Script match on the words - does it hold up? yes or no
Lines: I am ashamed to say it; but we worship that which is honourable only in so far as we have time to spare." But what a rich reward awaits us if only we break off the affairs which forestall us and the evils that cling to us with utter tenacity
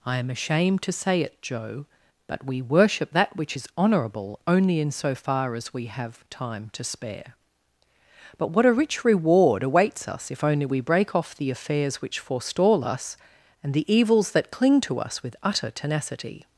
no